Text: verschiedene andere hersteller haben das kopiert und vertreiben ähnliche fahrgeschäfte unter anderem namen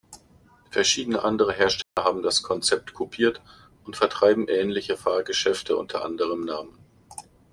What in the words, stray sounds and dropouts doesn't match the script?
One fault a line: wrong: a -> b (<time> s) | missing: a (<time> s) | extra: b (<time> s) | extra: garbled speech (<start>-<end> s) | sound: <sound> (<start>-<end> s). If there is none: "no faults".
sound: dropout (1.8-2.0 s)
extra: konzept (2.4 s)